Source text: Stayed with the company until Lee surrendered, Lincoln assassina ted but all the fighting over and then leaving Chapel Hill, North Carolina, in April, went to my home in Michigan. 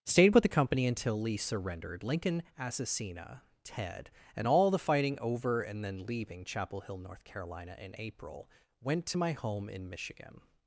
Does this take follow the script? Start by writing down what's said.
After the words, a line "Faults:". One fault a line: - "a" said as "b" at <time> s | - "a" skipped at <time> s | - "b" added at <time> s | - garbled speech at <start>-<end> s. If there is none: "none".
Stayed with the company until Lee surrendered, Lincoln assassina ted and all the fighting over and then leaving Chapel Hill, North Carolina, in April, went to my home in Michigan.
Faults:
- "but" said as "and" at 4.3 s